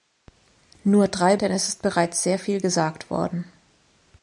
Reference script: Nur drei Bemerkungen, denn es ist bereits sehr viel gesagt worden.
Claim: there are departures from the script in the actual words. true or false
true